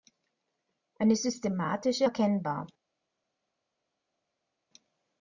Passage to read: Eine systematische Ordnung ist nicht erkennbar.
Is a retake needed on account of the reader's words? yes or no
yes